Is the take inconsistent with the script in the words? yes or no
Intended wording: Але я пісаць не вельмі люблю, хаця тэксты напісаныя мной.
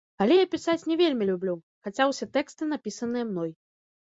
yes